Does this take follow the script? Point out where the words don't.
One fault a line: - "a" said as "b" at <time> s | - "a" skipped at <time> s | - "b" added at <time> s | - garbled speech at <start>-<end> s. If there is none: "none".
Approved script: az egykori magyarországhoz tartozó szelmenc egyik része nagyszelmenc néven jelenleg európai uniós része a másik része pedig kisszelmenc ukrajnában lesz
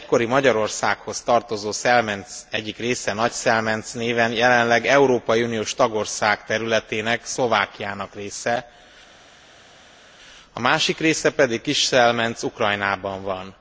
- "tagország területének szlovákiának" added at 5.7 s
- "lesz" said as "van" at 13.2 s